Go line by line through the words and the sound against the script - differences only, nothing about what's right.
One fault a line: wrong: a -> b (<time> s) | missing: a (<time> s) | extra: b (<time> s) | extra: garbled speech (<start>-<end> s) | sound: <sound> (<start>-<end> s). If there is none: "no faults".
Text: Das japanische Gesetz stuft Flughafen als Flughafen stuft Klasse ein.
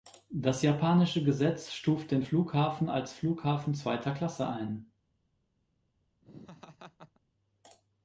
extra: den (2.1 s)
wrong: stuft -> zweiter (3.7 s)
sound: laugh (6.2-7.2 s)